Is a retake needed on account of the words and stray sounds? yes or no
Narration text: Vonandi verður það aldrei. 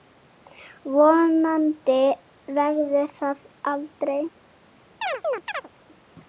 yes